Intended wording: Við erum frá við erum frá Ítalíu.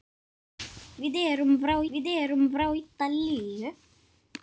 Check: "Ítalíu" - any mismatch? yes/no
no